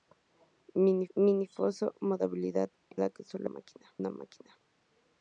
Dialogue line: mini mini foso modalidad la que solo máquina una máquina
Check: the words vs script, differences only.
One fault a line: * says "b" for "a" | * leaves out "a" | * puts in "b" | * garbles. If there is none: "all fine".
all fine